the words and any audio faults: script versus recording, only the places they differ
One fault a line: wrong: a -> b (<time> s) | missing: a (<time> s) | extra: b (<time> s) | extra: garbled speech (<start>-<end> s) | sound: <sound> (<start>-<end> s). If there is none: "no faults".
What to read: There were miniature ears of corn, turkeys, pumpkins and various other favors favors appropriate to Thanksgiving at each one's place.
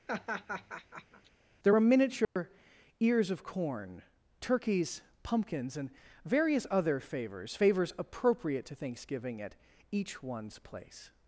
sound: laugh (0.1-1.3 s)
sound: dropout (2.2-2.4 s)